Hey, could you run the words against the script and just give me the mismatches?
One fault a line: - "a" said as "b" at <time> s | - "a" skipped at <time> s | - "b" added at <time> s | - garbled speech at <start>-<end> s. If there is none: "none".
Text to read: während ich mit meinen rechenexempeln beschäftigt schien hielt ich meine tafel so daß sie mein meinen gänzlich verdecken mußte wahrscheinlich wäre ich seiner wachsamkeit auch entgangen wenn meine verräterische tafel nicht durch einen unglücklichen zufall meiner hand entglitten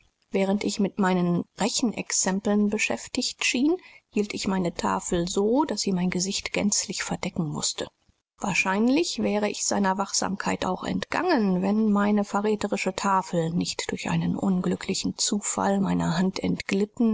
- "meinen" said as "gesicht" at 6.1 s